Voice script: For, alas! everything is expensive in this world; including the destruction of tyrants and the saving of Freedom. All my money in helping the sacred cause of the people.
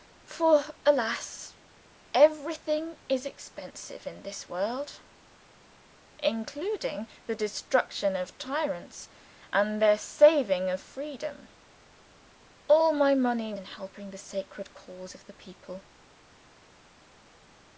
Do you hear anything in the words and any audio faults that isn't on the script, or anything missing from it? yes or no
no